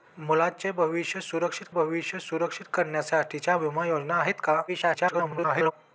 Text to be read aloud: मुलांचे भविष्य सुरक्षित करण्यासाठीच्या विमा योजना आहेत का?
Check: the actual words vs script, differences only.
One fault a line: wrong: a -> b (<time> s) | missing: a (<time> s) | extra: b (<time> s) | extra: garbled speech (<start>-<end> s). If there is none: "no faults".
extra: भविष्य सुरक्षित (1.7 s)
extra: garbled speech (4.7-5.7 s)